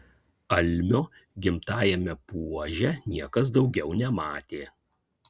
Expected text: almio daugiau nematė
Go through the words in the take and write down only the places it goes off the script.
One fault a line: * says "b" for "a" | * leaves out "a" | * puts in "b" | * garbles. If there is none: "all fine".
* puts in "gimtajame puože niekas"